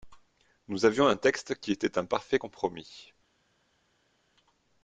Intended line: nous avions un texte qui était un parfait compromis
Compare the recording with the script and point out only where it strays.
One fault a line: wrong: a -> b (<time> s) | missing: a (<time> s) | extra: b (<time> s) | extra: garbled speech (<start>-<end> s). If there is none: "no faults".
no faults